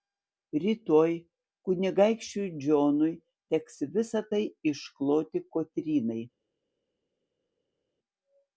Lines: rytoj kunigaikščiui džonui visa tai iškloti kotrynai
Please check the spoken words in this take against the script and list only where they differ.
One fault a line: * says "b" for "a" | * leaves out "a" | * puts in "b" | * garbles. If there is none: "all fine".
* puts in "teks"